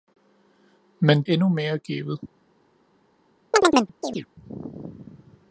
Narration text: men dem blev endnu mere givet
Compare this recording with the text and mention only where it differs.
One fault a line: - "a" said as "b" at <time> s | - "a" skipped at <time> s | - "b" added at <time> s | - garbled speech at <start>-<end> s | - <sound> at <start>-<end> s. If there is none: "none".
- "dem blev" skipped at 1.2 s
- chirp at 3.5-4.3 s